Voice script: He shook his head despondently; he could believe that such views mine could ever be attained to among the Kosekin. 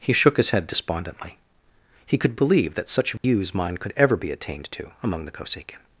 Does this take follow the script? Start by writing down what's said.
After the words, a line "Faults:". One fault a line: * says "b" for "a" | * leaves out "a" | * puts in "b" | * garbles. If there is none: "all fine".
He shook his head despondently; he could believe that such views mine could ever be attained to among the Kosekin.
Faults:
all fine